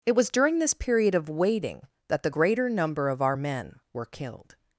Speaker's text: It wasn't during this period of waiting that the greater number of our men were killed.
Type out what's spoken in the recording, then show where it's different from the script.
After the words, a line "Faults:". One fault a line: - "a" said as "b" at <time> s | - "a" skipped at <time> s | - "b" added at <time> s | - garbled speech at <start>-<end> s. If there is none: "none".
It was during this period of waiting that the greater number of our men were killed.
Faults:
- "wasn't" said as "was" at 0.1 s